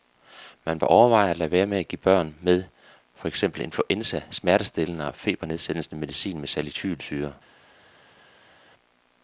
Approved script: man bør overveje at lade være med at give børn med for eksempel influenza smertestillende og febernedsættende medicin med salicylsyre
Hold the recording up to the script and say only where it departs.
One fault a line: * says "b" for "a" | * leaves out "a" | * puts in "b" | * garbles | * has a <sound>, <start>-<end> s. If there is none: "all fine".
all fine